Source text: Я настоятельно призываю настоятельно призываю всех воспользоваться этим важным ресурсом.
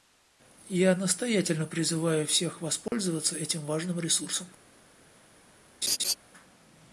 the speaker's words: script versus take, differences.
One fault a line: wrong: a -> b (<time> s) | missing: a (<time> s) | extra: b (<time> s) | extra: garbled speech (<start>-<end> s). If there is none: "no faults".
missing: настоятельно призываю (2.2 s)